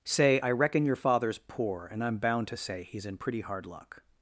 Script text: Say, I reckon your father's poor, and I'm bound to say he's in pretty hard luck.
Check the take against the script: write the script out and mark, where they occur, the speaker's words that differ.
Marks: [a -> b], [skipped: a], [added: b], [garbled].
Say, I reckon your father's poor, and I'm bound to say he's in pretty hard luck.